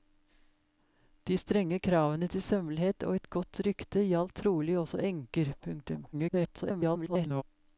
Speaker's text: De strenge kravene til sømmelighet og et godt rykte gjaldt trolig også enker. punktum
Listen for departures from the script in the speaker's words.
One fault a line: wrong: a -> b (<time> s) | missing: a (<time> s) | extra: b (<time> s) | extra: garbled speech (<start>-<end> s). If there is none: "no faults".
extra: garbled speech (6.1-7.4 s)